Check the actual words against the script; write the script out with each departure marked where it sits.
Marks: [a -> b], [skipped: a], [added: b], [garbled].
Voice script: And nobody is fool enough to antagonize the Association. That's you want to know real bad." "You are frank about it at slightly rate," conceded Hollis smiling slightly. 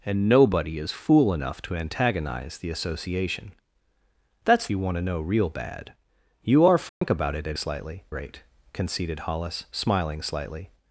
And nobody is fool enough to antagonize the Association. That's you want to know real bad." "You are frank about it at slightly rate," conceded Hollis smiling slightly.